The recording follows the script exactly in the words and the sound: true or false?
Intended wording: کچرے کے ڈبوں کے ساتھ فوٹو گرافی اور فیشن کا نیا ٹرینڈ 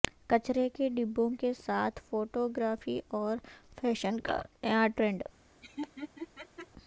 false